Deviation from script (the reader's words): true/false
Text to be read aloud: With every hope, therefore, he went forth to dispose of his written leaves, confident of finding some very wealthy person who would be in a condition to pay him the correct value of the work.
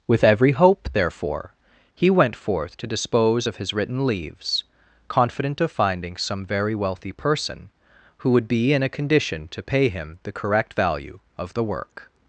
false